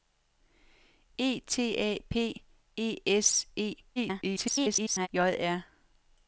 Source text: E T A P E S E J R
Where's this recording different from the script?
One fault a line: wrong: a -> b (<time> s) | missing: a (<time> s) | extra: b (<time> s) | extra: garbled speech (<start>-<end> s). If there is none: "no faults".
extra: garbled speech (4.0-5.1 s)